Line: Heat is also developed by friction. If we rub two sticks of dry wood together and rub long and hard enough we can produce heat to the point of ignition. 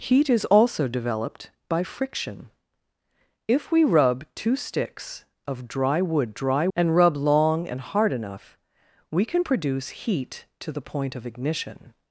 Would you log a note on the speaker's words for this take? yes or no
yes